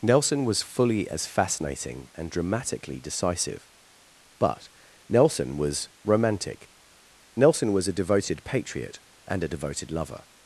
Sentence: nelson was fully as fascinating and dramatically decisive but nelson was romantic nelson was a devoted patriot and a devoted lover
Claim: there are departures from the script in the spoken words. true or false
false